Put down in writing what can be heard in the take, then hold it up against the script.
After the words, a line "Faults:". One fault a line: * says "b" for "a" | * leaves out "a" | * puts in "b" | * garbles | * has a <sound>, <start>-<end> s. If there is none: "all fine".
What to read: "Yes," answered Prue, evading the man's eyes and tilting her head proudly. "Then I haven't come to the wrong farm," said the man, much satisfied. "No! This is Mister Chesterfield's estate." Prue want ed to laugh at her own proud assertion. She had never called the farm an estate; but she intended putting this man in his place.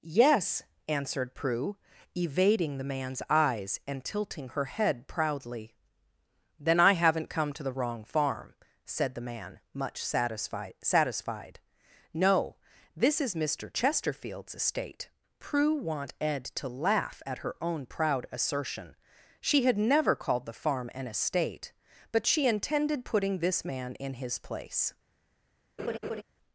"Yes," answered Prue, evading the man's eyes and tilting her head proudly. "Then I haven't come to the wrong farm," said the man, much satisfied satisfied. "No! This is Mister Chesterfield's estate." Prue want ed to laugh at her own proud assertion. She had never called the farm an estate; but she intended putting this man in his place.
Faults:
* puts in "satisfied"
* has a laugh, 25.8-26.2 s